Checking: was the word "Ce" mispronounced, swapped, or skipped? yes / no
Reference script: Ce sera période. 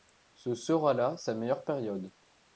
no